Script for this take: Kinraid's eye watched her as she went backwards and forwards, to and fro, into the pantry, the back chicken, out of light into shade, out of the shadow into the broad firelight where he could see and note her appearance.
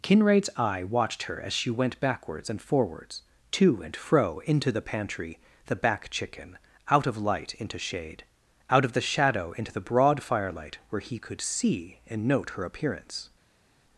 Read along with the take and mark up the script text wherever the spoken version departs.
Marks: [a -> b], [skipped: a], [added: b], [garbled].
Kinraid's eye watched her as she went backwards and forwards, to and fro, into the pantry, the back chicken, out of light into shade, out of the shadow into the broad firelight where he could see and note her appearance.